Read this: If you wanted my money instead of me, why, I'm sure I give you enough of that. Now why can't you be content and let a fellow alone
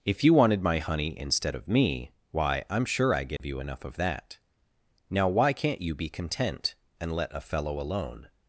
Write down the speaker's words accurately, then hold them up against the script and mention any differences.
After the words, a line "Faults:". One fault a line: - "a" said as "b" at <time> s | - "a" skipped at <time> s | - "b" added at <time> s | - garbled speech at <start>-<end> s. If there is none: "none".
If you wanted my honey instead of me, why, I'm sure I give you enough of that. Now why can't you be content and let a fellow alone
Faults:
- "money" said as "honey" at 0.8 s